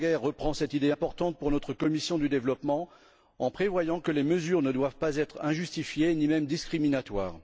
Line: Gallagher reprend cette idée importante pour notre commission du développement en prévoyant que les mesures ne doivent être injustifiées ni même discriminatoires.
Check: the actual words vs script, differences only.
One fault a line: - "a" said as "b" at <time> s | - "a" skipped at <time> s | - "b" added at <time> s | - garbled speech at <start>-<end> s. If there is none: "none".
- "pas" added at 5.0 s